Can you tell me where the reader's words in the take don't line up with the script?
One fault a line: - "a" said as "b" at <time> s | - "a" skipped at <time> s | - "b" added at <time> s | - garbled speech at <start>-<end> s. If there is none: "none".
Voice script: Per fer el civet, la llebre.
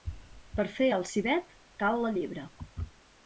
- "cal" added at 1.8 s